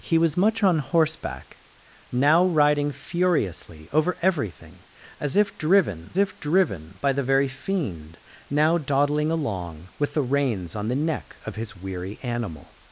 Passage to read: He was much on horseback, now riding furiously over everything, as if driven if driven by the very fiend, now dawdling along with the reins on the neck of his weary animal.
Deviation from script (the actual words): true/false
false